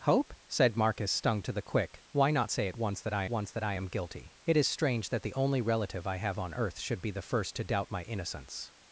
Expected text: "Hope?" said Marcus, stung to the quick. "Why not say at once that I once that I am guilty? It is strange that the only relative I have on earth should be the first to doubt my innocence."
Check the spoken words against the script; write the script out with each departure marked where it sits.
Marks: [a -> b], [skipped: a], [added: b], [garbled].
"Hope?" said Marcus, stung to the quick. "Why not say at once that I once that I am guilty? It is strange that the only relative I have on earth should be the first to doubt my innocence."